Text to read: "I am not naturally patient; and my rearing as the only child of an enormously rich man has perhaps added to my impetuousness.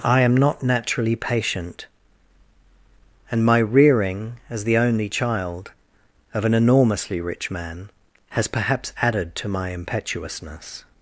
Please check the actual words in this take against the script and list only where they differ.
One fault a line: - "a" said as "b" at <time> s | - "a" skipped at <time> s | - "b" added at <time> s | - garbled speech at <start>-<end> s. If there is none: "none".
none